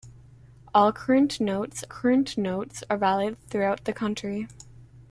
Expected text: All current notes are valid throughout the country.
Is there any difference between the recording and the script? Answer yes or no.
yes